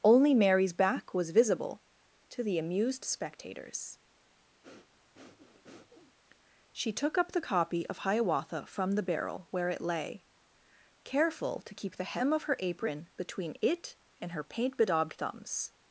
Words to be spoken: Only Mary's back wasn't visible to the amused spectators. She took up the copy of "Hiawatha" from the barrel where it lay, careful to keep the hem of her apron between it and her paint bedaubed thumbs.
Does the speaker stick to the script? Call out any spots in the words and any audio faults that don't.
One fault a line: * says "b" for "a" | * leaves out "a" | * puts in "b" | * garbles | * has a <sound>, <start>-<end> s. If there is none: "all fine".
* says "was" for "wasn't"
* has a breath, 4.6-6.2 s